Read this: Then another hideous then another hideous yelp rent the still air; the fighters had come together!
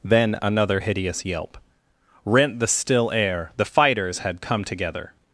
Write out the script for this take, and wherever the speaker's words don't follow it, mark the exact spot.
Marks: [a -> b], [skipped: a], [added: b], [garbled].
Then another hideous [skipped: then another hideous] yelp rent the still air; the fighters had come together!